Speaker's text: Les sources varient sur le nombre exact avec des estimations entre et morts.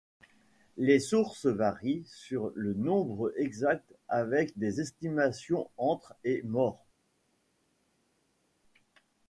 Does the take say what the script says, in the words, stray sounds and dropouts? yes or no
yes